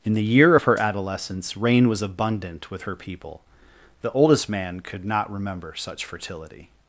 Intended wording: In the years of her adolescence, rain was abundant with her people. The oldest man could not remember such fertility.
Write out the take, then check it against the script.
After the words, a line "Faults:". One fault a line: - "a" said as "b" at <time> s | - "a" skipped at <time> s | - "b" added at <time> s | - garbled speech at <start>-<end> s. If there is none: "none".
In the year of her adolescence, rain was abundant with her people. The oldest man could not remember such fertility.
Faults:
- "years" said as "year" at 0.2 s